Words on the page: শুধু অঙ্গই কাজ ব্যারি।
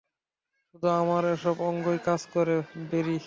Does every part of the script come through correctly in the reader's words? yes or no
no